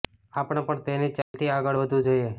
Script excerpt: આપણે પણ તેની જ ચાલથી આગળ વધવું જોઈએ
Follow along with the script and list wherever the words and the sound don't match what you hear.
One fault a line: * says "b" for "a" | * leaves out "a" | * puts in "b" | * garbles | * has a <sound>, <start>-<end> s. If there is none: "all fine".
* has a dropout, 1.2-1.3 s